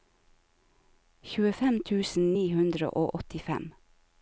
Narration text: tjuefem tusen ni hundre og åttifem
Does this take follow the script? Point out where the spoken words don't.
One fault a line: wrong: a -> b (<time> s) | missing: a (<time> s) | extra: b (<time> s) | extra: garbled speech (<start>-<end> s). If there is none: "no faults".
no faults